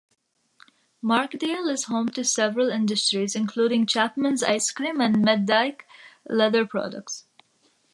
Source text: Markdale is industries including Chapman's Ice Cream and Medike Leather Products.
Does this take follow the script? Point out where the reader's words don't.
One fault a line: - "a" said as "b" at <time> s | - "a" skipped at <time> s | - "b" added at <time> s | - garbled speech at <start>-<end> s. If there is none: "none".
- "home to several" added at 1.8 s